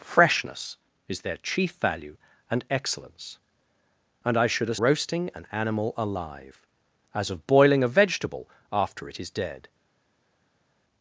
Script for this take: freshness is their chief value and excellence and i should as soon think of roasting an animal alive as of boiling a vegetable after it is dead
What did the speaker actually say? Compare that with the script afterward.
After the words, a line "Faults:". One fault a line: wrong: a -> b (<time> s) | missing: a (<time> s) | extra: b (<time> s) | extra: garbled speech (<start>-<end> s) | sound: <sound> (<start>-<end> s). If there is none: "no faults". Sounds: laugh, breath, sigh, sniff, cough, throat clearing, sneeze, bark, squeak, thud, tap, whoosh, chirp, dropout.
freshness is their chief value and excellence and i should as roasting an animal alive as of boiling a vegetable after it is dead
Faults:
missing: soon think of (4.8 s)